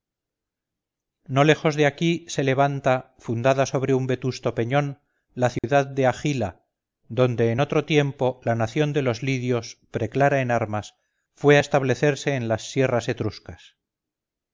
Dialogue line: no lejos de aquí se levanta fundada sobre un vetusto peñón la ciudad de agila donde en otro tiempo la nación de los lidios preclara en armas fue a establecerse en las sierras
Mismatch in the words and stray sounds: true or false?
true